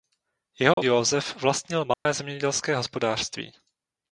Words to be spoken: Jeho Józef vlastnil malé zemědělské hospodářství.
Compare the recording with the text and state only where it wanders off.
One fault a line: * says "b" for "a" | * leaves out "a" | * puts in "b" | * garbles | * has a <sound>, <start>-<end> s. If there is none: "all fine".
* has a dropout, 0.7-0.8 s
* has a dropout, 1.9-2.1 s